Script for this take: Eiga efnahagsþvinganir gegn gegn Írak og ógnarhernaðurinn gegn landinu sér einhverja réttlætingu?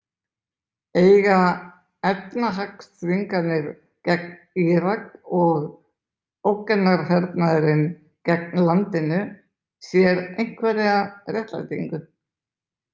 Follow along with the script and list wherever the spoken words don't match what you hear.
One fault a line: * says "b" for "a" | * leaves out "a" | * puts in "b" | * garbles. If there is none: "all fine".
* leaves out "gegn"